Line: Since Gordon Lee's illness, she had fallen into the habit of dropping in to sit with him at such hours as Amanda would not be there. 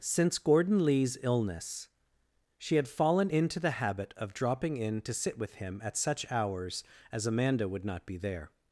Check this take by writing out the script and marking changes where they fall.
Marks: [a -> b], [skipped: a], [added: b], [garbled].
Since Gordon Lee's illness, she had fallen into the habit of dropping in to sit with him at such hours as Amanda would not be there.